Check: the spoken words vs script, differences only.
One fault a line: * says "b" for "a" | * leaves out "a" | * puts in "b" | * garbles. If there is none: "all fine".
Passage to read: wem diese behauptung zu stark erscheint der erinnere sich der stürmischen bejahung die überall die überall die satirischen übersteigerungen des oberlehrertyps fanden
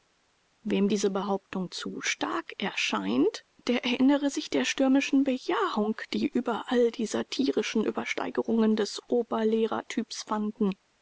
* leaves out "überall die"